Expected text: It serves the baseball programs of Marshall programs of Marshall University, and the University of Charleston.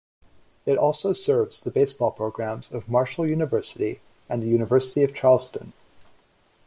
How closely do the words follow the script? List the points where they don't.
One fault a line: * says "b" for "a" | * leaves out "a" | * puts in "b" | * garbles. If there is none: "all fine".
* puts in "also"
* leaves out "programs of Marshall"